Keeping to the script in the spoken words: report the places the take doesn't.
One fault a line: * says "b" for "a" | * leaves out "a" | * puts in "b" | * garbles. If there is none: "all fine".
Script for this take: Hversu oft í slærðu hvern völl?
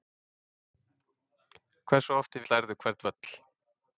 all fine